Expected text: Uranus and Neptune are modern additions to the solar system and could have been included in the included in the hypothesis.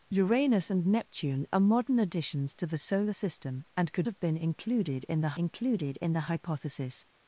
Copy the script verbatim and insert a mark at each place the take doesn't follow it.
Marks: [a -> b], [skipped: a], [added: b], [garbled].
Uranus and Neptune are modern additions to the solar system and could have been included in the included in the hypothesis.